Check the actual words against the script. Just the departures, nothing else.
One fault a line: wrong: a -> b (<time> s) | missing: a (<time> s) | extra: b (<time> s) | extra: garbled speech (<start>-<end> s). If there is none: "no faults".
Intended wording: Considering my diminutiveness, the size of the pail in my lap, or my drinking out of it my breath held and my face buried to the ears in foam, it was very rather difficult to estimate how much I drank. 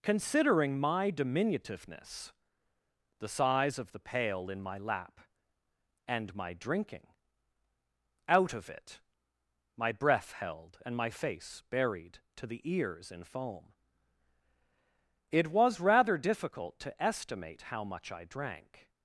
wrong: or -> and (6.1 s)
missing: very (15.8 s)